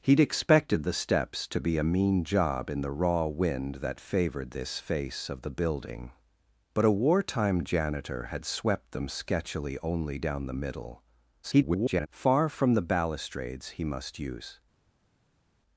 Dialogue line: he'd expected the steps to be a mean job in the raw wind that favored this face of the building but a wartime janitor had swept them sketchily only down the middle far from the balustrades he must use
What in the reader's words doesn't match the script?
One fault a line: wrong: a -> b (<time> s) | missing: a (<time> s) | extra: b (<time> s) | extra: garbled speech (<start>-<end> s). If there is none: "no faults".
extra: garbled speech (11.4-12.1 s)